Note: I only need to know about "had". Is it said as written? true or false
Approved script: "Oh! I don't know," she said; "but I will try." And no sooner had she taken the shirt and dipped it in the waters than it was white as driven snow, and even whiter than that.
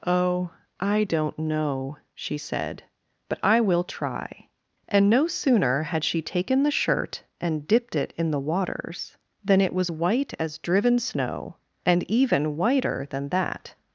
true